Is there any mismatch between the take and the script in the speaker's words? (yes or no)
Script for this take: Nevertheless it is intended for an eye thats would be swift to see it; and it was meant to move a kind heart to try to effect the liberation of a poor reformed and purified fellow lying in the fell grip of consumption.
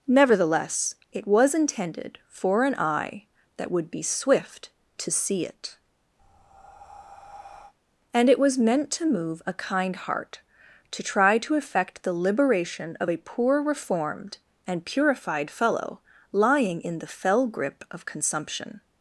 yes